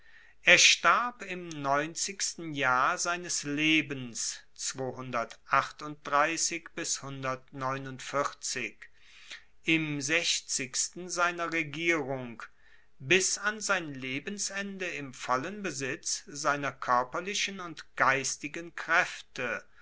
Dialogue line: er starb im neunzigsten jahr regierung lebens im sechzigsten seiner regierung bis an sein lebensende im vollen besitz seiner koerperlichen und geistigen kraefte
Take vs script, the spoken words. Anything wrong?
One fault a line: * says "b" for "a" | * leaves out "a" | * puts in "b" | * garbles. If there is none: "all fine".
* says "seines" for "regierung"